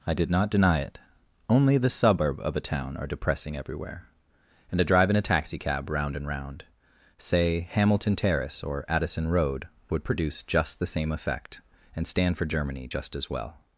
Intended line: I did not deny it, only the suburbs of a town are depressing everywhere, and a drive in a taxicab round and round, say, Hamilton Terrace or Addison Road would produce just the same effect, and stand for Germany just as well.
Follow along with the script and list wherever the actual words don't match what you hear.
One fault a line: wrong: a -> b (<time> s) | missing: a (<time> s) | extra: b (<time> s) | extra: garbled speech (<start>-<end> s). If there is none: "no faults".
wrong: suburbs -> suburb (1.9 s)